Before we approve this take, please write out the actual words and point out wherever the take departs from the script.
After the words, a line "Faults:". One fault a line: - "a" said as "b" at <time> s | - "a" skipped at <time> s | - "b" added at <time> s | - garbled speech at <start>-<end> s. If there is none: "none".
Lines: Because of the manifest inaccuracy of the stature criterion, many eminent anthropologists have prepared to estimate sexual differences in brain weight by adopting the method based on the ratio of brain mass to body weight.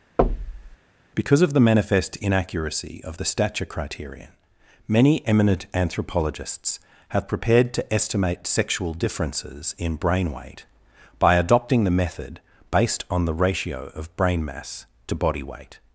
Because of the manifest inaccuracy of the stature criterion, many eminent anthropologists have prepared to estimate sexual differences in brain weight by adopting the method based on the ratio of brain mass to body weight.
Faults:
none